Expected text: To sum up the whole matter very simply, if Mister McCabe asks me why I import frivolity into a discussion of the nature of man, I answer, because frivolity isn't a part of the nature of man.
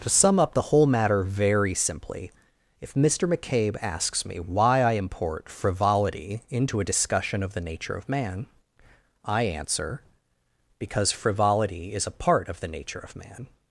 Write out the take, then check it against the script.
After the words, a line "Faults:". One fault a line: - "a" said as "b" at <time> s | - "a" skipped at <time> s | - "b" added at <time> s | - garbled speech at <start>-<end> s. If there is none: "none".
To sum up the whole matter very simply, if Mister McCabe asks me why I import frivolity into a discussion of the nature of man, I answer, because frivolity is a part of the nature of man.
Faults:
- "isn't" said as "is" at 11.9 s